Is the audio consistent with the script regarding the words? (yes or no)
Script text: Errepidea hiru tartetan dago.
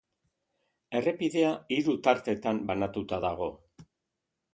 no